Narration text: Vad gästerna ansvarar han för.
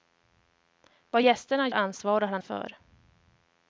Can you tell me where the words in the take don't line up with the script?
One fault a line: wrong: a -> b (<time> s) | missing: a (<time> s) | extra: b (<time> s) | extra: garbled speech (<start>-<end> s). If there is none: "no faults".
no faults